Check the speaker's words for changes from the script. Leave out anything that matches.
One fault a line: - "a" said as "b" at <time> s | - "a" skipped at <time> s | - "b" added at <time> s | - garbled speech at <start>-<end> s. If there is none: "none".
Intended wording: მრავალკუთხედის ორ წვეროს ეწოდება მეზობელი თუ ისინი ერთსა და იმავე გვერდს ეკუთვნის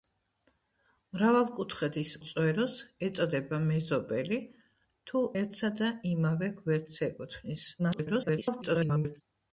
- "ორ" skipped at 2.1 s
- "ისინი" skipped at 5.2 s
- garbled speech at 7.8-9.2 s